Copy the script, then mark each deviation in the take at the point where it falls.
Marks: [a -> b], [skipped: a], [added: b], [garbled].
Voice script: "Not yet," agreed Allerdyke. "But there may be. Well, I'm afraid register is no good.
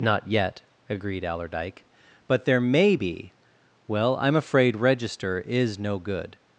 "Not yet," agreed Allerdyke. "But there may be. Well, I'm afraid register is no good.